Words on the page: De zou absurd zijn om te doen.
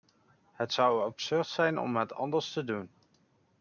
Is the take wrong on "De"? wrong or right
wrong